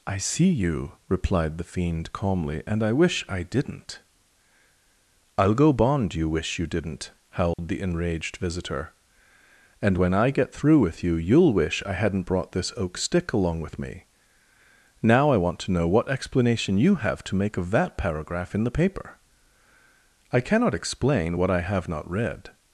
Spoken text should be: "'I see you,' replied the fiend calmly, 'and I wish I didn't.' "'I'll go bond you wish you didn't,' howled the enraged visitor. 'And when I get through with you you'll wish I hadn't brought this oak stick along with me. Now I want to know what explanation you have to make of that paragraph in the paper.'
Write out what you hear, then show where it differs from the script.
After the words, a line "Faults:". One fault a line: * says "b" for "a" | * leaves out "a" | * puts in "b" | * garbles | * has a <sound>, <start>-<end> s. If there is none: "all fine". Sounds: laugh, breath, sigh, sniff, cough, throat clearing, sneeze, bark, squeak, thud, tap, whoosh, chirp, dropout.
"'I see you,' replied the fiend calmly, 'and I wish I didn't.' "'I'll go bond you wish you didn't,' howled the enraged visitor. 'And when I get through with you you'll wish I hadn't brought this oak stick along with me. Now I want to know what explanation you have to make of that paragraph in the paper.' "'I cannot explain what I have not read
Faults:
* has a dropout, 7.5-7.6 s
* puts in "I cannot explain what I have not read"